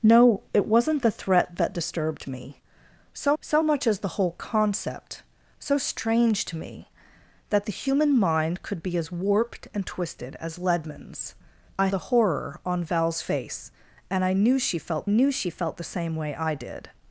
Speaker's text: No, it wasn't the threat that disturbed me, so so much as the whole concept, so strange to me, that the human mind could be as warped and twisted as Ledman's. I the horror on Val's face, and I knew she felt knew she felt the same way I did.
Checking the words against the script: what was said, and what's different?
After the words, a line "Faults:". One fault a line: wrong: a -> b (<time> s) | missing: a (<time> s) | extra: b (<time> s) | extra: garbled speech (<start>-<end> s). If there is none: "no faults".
No, it wasn't the threat that disturbed me, so so much as the whole concept, so strange to me, that the human mind could be as warped and twisted as Ledman's. I the horror on Val's face, and I knew she felt knew she felt the same way I did.
Faults:
no faults